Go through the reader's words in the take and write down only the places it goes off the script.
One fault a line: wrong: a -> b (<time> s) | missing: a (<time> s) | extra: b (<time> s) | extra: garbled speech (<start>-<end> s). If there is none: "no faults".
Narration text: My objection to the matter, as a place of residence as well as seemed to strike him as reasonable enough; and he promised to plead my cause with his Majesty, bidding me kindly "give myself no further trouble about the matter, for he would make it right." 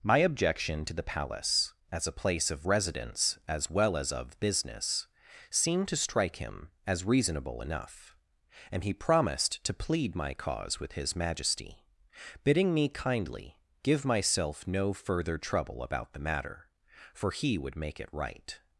wrong: matter -> palace (1.0 s)
extra: of business (4.1 s)